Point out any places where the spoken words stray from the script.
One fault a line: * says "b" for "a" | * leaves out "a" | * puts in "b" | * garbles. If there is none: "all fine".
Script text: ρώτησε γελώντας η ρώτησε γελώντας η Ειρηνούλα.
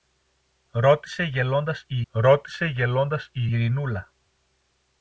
all fine